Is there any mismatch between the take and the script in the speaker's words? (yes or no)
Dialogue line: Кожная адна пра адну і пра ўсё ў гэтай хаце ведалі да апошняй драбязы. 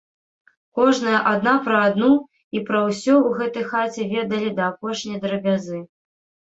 no